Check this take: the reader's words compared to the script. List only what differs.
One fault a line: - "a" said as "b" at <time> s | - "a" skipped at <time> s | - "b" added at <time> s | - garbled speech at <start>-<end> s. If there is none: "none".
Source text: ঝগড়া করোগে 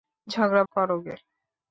none